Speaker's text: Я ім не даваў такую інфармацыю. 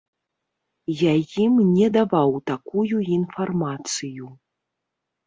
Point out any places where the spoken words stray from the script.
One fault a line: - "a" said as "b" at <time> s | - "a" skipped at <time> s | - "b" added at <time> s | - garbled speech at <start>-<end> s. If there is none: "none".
none